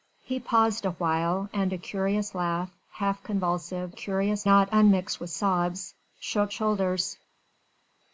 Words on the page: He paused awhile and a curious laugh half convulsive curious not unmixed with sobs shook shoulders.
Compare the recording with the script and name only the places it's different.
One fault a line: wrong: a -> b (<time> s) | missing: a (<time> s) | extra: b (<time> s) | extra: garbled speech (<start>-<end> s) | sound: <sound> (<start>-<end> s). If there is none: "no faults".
no faults